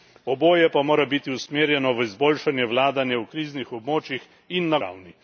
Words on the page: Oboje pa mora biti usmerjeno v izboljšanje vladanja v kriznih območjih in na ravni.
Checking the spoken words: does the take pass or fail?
pass